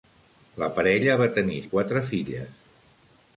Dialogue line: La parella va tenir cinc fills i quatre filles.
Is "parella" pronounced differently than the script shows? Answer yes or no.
no